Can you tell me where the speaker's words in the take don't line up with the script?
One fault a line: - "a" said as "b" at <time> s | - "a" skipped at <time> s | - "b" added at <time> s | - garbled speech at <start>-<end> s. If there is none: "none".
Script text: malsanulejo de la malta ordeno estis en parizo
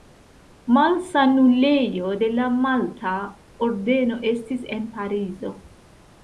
none